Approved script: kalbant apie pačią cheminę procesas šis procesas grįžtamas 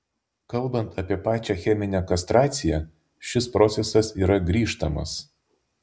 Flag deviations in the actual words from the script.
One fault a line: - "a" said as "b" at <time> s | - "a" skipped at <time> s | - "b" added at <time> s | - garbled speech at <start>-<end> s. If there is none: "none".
- "procesas" said as "kastraciją" at 2.1 s
- "yra" added at 4.2 s